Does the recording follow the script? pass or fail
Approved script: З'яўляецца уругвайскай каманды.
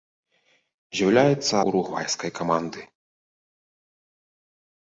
pass